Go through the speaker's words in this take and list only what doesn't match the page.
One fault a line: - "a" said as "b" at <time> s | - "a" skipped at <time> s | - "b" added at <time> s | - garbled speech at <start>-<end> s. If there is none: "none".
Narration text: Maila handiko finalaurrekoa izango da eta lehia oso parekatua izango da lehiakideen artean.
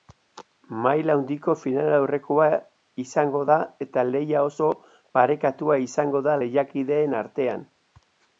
none